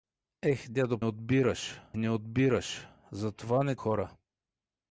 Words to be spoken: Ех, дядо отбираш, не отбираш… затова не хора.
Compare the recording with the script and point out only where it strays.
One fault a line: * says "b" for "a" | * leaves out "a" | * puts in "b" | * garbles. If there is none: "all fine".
all fine